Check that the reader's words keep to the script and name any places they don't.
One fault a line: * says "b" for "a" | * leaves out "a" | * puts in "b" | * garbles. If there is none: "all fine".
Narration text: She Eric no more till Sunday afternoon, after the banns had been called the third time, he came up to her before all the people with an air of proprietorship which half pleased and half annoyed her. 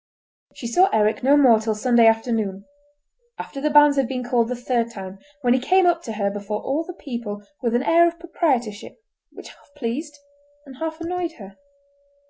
* puts in "saw"
* puts in "when"